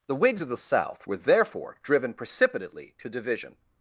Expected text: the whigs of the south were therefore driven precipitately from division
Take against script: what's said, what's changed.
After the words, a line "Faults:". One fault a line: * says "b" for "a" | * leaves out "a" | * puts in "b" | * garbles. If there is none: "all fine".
the whigs of the south were therefore driven precipitately to division
Faults:
* says "to" for "from"